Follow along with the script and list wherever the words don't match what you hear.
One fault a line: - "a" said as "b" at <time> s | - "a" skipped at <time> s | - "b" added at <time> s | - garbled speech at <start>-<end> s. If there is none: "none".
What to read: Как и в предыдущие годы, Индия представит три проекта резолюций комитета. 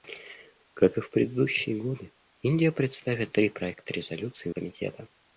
none